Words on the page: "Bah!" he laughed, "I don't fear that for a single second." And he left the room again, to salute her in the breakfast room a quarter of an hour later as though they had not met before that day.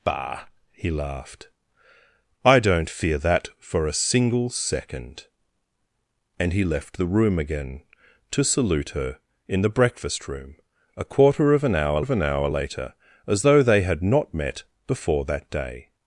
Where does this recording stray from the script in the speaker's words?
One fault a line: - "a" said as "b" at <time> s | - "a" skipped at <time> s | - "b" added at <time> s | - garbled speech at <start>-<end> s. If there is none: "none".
- "of an hour" added at 12.0 s